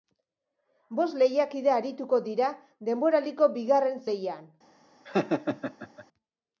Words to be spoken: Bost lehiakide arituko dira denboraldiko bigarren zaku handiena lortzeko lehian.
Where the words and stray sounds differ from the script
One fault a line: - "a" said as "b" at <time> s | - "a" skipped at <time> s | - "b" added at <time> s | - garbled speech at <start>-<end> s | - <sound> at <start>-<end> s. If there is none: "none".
- "zaku handiena lortzeko" skipped at 4.0 s
- laugh at 5.0-6.1 s